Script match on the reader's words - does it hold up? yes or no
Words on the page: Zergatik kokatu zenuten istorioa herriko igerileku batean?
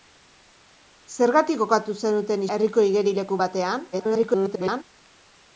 no